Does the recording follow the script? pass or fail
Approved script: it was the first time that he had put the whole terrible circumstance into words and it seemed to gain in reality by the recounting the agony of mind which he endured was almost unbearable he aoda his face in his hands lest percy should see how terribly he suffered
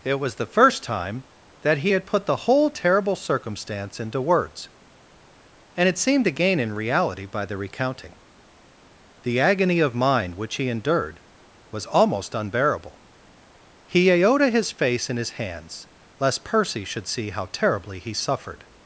pass